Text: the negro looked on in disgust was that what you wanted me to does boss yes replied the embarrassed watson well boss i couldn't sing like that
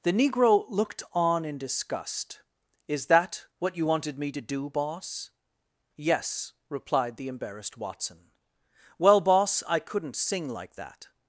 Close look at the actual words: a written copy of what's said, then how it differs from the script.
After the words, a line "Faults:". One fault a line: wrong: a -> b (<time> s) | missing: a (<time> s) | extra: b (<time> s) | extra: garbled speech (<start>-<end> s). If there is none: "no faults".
the negro looked on in disgust is that what you wanted me to do boss yes replied the embarrassed watson well boss i couldn't sing like that
Faults:
wrong: was -> is (2.9 s)
wrong: does -> do (4.4 s)